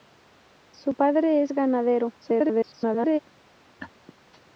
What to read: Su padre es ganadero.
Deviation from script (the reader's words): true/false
true